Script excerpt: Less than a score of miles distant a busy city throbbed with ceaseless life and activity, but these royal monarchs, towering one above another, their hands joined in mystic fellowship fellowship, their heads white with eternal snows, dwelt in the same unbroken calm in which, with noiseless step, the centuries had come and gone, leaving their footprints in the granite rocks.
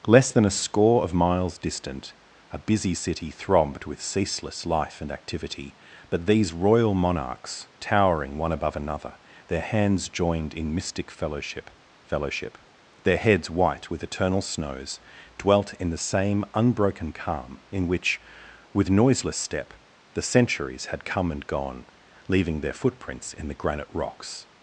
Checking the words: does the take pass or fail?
pass